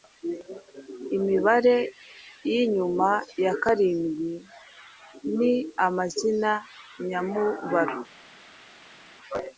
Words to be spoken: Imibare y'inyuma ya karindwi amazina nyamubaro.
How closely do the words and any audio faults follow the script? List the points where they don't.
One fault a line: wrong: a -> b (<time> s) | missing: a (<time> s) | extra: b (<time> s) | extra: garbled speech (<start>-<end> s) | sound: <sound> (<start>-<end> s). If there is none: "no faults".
extra: ni (5.4 s)